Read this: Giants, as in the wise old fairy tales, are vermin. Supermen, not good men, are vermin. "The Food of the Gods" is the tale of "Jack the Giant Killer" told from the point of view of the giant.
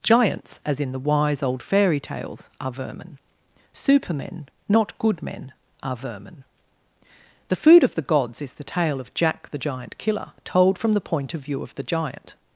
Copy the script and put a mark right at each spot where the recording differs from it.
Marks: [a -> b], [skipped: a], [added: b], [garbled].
Giants, as in the wise old fairy tales, are vermin. Supermen, not good men, are vermin. "The Food of the Gods" is the tale of "Jack the Giant Killer" told from the point of view of the giant.